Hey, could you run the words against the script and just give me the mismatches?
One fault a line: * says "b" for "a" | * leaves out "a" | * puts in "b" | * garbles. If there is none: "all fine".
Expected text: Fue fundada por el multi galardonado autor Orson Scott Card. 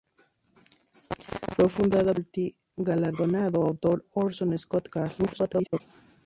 * garbles